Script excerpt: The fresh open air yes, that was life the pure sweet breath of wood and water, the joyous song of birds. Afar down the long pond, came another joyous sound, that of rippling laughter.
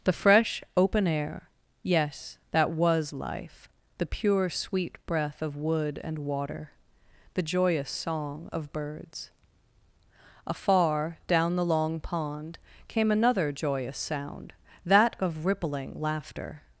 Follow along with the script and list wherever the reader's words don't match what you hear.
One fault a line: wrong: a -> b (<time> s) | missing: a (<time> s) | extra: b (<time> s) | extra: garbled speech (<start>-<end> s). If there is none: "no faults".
no faults